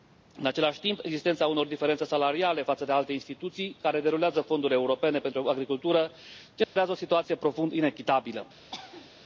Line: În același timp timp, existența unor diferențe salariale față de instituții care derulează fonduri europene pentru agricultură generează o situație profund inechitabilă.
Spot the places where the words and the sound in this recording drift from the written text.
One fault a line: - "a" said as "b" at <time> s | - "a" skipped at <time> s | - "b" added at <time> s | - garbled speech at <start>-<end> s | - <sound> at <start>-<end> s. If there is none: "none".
- "timp" skipped at 1.0 s
- "alte" added at 2.9 s
- dropout at 6.6-6.8 s
- cough at 8.7-9.1 s